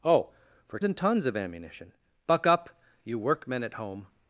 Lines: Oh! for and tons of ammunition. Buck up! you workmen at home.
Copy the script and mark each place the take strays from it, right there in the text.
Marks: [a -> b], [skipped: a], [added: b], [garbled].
Oh! for and tons of ammunition. Buck up! you workmen at home.